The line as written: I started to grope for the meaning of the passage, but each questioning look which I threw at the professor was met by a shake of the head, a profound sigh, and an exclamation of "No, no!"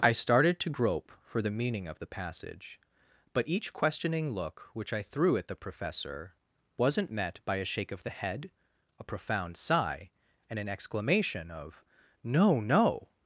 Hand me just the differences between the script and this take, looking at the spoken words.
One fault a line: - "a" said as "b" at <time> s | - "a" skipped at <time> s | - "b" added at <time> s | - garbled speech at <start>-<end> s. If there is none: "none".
- "was" said as "wasn't" at 6.8 s